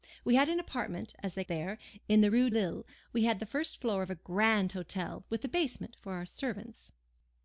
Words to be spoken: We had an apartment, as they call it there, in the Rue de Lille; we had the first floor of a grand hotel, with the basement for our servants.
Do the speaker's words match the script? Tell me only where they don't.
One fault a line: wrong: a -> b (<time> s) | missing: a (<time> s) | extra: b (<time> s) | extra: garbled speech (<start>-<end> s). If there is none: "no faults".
missing: call it (1.4 s)
missing: de (2.5 s)